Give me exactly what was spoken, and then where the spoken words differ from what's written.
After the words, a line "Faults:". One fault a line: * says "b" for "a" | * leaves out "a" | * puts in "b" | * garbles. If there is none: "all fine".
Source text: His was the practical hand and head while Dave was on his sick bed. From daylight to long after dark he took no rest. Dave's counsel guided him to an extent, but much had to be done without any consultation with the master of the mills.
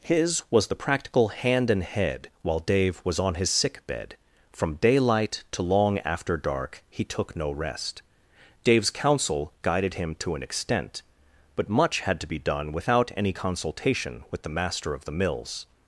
His was the practical hand and head while Dave was on his sick bed. From daylight to long after dark he took no rest. Dave's counsel guided him to an extent, but much had to be done without any consultation with the master of the mills.
Faults:
all fine